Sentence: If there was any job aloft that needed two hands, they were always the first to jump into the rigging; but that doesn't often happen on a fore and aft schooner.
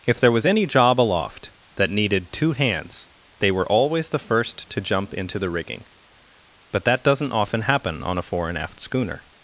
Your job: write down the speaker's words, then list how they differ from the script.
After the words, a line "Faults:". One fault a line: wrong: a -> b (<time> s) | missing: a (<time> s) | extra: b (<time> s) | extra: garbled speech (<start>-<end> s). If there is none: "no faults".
If there was any job aloft that needed two hands, they were always the first to jump into the rigging; but that doesn't often happen on a fore and aft schooner.
Faults:
no faults